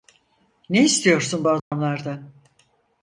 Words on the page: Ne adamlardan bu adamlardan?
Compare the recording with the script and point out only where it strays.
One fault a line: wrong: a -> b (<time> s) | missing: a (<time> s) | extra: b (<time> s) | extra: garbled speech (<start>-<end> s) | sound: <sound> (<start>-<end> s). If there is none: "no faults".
wrong: adamlardan -> istiyorsun (0.8 s)
sound: dropout (1.6-1.7 s)